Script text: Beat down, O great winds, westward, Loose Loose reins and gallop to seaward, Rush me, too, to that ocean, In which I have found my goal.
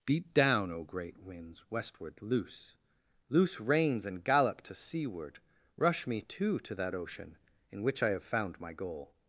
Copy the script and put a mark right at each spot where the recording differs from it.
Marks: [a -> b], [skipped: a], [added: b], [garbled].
Beat down, O great winds, westward, Loose Loose reins and gallop to seaward, Rush me, too, to that ocean, In which I have found my goal.